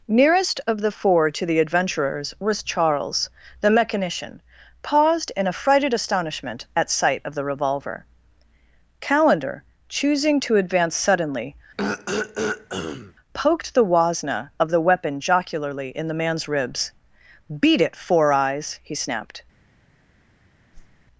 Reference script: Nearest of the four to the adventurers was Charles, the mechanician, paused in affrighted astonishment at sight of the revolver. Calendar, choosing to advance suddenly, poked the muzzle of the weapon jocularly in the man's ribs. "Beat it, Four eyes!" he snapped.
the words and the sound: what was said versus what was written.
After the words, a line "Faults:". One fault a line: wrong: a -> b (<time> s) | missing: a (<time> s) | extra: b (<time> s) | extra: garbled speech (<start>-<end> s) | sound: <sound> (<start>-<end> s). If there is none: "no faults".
Nearest of the four to the adventurers was Charles, the mechanician, paused in affrighted astonishment at sight of the revolver. Calendar, choosing to advance suddenly, poked the wasna of the weapon jocularly in the man's ribs. "Beat it, Four eyes!" he snapped.
Faults:
sound: throat clearing (11.8-13.1 s)
wrong: muzzle -> wasna (13.8 s)
sound: whoosh (20.7-21.1 s)